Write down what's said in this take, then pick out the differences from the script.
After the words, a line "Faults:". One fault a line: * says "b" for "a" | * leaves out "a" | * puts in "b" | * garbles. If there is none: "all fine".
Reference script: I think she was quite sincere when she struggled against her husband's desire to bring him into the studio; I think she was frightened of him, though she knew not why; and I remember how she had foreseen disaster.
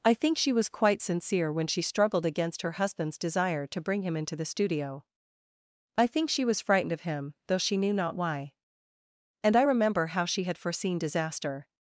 I think she was quite sincere when she struggled against her husband's desire to bring him into the studio; I think she was frightened of him, though she knew not why; and I remember how she had foreseen disaster.
Faults:
all fine